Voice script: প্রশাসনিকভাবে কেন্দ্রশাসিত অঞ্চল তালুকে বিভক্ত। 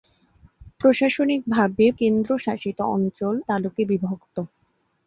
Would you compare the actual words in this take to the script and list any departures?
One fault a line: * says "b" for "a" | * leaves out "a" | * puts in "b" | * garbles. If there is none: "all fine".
all fine